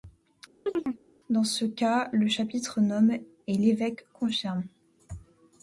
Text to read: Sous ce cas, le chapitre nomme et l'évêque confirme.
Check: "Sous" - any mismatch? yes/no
yes